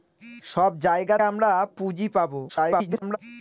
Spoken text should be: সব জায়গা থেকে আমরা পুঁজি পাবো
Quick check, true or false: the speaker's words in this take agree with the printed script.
false